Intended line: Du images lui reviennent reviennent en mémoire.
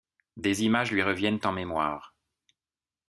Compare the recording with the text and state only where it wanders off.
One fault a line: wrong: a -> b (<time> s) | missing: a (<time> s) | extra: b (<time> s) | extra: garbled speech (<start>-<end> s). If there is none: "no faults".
wrong: Du -> Des (0.3 s)
missing: reviennent (1.4 s)